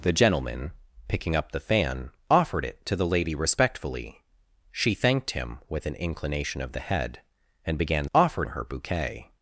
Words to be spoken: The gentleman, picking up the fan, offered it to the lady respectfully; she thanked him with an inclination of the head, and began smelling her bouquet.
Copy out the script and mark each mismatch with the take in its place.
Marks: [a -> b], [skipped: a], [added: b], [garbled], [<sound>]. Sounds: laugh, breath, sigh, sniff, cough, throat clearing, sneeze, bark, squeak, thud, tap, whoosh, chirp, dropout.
The gentleman, picking up the fan, offered it to the lady respectfully; she thanked him with an inclination of the head, and began [smelling -> offered] her bouquet.